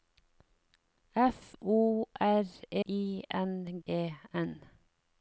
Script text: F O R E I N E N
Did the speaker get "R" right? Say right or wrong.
right